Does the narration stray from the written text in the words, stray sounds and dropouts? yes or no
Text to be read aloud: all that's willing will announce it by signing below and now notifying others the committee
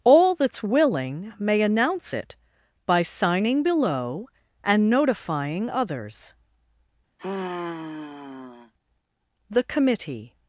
yes